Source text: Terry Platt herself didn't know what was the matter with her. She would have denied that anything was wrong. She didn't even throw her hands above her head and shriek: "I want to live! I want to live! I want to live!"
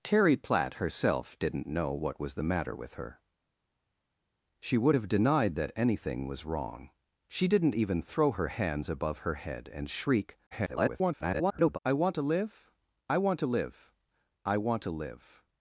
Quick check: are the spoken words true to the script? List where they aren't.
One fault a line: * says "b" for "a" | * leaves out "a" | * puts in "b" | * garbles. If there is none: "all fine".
* garbles